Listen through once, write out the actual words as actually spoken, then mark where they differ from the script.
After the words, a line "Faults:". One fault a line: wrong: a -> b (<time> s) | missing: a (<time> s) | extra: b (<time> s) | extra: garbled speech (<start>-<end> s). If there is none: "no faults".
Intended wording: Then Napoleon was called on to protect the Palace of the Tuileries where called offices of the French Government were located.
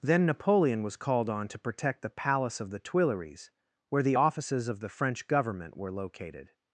Then Napoleon was called on to protect the Palace of the Tuileries where the offices of the French Government were located.
Faults:
wrong: called -> the (4.0 s)